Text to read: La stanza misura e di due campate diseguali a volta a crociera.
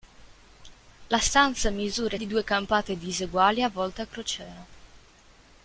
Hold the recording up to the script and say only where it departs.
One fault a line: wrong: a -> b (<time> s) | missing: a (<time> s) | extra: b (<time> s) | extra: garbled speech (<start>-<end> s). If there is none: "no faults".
no faults